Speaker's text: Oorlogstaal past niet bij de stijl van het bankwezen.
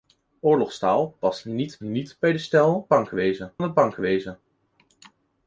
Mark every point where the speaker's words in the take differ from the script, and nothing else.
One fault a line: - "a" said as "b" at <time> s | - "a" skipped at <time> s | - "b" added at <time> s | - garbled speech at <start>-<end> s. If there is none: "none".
- "niet" added at 1.8 s
- "van" said as "bankwezen" at 2.9 s